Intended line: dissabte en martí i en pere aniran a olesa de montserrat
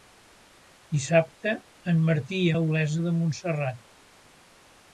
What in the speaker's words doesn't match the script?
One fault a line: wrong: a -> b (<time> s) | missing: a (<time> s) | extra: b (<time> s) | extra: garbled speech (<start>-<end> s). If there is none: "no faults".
missing: en pere aniran (2.5 s)